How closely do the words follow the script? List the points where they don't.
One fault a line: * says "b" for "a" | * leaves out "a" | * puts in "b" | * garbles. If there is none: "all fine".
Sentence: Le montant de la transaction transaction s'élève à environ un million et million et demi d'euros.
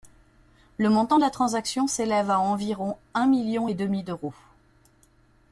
* leaves out "transaction"
* leaves out "million et"